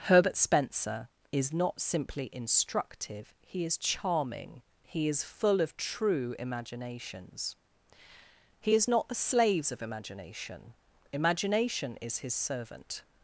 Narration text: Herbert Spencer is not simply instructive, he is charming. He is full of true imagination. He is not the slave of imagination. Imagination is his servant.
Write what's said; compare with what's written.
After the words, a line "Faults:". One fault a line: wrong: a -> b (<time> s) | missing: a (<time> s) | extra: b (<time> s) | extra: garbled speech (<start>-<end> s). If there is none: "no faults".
Herbert Spencer is not simply instructive, he is charming. He is full of true imaginations. He is not the slaves of imagination. Imagination is his servant.
Faults:
wrong: imagination -> imaginations (6.4 s)
wrong: slave -> slaves (9.2 s)